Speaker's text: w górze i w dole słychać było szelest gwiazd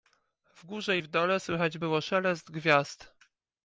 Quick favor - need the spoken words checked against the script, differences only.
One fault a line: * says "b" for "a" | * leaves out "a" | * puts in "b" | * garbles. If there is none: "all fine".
all fine